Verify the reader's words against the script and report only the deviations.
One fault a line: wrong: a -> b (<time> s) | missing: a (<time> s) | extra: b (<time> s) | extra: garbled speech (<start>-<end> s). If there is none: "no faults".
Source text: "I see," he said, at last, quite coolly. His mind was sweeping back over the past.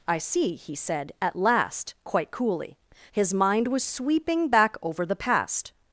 no faults